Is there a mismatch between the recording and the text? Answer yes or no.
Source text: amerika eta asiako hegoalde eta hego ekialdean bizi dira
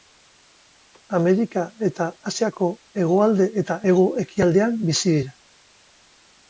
no